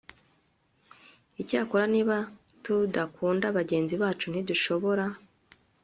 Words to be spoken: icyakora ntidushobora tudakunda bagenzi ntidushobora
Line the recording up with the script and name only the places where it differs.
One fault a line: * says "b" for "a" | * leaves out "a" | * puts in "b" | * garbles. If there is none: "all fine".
* says "niba" for "ntidushobora"
* puts in "bacu"